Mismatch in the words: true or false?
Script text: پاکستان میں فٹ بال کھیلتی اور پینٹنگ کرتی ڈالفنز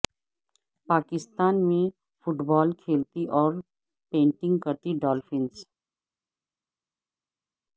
false